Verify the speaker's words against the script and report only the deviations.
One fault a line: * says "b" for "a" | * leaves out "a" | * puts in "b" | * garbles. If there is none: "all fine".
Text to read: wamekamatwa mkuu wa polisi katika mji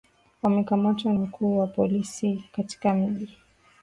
all fine